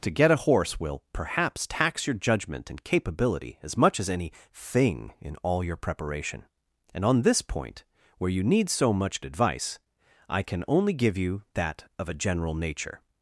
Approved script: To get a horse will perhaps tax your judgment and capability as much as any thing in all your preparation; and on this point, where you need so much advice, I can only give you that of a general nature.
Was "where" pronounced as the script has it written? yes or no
yes